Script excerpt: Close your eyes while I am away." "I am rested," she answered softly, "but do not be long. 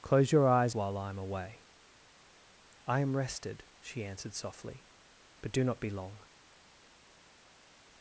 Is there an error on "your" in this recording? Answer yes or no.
no